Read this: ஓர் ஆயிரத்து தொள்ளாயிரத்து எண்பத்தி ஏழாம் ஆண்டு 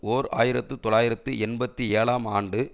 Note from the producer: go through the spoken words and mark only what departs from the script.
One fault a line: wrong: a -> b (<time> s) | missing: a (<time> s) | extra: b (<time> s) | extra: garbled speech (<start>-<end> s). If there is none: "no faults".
no faults